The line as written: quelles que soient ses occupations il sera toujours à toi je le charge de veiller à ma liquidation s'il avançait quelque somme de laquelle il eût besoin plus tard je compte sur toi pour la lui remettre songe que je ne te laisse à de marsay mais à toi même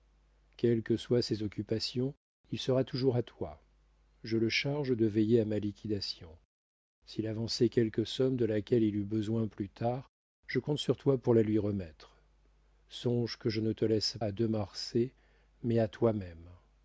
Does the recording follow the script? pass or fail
pass